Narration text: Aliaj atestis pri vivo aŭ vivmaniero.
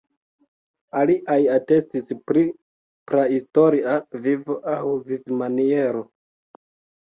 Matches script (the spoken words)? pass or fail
fail